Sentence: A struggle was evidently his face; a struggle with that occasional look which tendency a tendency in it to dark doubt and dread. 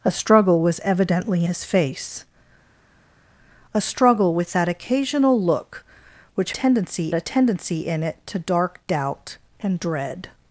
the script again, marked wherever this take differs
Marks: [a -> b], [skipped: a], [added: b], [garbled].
A struggle was evidently his face; a struggle with that occasional look which tendency a tendency in it to dark doubt and dread.